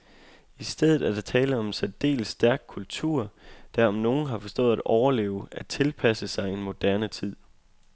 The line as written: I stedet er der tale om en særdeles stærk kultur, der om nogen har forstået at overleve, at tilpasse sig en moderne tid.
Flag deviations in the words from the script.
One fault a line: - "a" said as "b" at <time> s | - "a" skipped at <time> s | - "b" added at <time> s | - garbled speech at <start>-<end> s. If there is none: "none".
none